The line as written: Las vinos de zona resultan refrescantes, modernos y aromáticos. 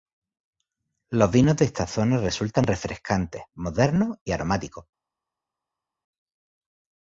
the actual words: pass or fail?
fail